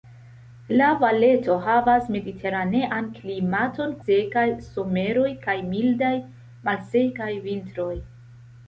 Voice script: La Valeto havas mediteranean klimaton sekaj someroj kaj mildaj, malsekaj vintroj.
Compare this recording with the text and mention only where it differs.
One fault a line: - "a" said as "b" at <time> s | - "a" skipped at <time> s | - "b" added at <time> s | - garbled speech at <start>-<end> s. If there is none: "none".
none